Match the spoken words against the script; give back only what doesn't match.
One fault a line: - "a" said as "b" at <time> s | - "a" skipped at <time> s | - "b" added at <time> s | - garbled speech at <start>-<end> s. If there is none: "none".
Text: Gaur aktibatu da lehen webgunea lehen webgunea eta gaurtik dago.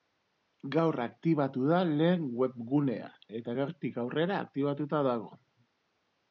- "lehen webgunea eta gaurtik" said as "eta gaurtik aurrera aktibatuta" at 3.4 s